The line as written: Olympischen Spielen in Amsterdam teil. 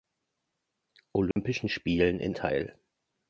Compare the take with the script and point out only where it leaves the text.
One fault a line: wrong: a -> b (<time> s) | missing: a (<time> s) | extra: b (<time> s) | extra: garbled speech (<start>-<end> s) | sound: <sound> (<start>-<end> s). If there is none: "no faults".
sound: dropout (1.3-1.4 s)
missing: Amsterdam (2.4 s)